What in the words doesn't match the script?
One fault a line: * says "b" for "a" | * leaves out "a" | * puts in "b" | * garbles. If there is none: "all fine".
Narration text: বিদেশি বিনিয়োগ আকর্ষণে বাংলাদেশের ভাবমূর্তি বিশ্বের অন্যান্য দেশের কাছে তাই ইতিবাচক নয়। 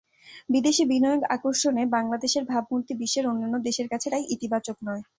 all fine